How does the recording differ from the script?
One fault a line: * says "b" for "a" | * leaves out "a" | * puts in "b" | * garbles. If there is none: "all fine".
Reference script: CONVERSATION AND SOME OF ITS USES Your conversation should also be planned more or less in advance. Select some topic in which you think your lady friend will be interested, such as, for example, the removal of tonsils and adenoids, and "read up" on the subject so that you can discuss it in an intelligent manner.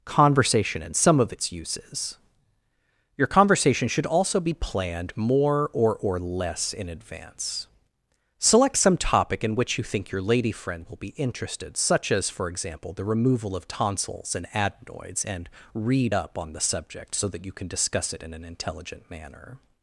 * puts in "or"